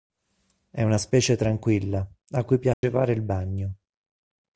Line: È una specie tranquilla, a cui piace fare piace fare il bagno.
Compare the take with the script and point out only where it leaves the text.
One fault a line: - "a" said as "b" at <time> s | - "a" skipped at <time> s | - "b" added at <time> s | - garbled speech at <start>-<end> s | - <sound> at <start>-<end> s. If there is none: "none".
- dropout at 2.7-2.8 s
- "piace fare" skipped at 3.1 s